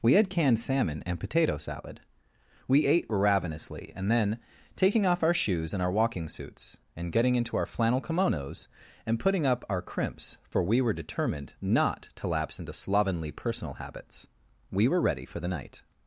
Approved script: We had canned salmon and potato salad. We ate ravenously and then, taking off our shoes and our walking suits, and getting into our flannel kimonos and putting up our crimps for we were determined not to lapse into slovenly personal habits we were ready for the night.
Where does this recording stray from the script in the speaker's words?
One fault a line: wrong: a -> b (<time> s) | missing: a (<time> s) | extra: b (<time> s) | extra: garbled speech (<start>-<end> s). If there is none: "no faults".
no faults